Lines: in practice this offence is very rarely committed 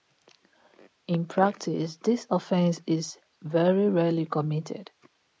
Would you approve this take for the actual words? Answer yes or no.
yes